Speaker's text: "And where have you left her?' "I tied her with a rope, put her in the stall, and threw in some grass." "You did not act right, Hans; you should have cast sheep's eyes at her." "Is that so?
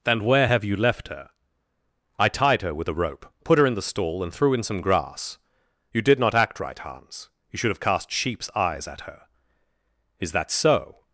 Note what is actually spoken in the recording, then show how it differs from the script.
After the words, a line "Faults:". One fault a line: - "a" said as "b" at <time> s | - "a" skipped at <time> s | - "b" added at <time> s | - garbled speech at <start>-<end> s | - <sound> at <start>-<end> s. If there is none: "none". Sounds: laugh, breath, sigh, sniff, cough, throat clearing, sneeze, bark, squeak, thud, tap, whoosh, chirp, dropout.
"And where have you left her?' "I tied her with a rope, put her in the stall, and threw in some grass." "You did not act right, Hans; you should have cast sheep's eyes at her." "Is that so?
Faults:
none